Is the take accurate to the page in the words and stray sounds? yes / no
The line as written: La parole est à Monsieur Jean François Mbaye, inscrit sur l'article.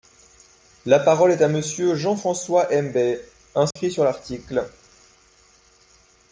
no